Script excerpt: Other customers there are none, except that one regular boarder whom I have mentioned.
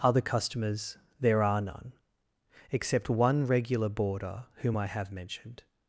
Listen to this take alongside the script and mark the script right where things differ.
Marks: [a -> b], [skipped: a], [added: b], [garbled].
Other customers there are none, except [skipped: that] one regular boarder whom I have mentioned.